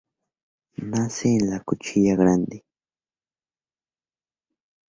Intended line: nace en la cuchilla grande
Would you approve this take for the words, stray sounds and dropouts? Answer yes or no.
yes